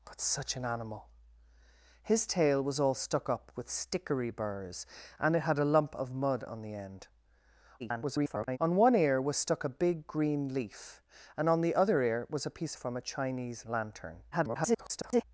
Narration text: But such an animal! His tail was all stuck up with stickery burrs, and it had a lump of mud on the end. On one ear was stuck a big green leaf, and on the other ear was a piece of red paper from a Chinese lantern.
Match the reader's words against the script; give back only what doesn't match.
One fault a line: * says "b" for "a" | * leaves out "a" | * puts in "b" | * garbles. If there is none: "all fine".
* garbles
* leaves out "of red paper"
* garbles